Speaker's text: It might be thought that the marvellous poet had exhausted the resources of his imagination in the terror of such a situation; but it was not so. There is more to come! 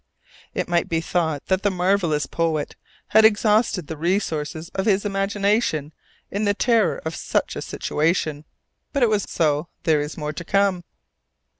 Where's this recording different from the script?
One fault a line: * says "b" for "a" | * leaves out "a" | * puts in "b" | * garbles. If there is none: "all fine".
* leaves out "not"